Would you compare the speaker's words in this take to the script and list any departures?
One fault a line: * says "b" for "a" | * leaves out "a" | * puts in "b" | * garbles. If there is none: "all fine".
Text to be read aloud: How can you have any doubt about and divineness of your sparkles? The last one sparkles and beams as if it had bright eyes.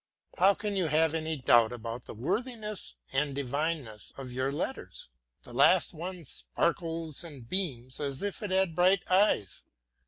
* puts in "the worthiness"
* says "letters" for "sparkles"